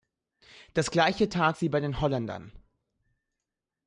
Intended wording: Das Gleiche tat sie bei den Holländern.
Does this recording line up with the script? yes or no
yes